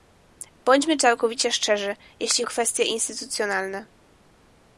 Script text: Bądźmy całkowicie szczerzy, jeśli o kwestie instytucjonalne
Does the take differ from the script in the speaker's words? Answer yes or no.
no